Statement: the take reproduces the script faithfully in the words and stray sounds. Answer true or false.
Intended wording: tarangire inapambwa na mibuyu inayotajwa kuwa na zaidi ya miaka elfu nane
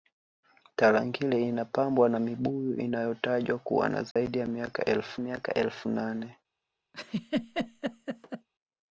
false